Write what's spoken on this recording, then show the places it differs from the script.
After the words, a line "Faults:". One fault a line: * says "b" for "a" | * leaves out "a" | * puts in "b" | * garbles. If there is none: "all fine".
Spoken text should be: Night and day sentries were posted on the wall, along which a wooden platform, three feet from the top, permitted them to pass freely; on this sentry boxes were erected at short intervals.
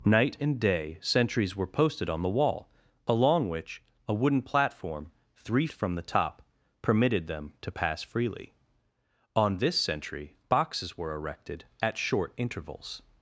Night and day sentries were posted on the wall, along which a wooden platform, three from the top, permitted them to pass freely; on this sentry boxes were erected at short intervals.
Faults:
* leaves out "feet"